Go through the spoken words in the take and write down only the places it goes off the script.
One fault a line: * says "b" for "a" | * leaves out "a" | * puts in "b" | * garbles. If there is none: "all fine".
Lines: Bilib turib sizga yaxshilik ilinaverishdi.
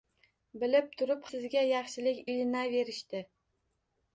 all fine